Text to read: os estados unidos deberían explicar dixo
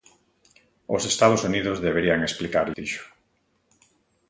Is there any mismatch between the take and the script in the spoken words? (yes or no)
no